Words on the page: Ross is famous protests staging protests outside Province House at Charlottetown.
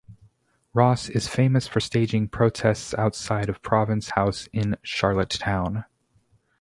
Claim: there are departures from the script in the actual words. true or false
true